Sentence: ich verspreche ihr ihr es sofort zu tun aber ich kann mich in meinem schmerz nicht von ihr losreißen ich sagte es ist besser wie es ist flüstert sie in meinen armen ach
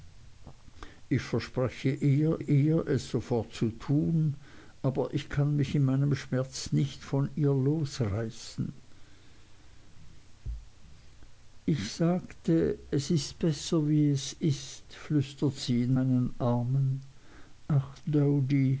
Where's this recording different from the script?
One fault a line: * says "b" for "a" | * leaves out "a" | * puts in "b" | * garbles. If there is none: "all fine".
all fine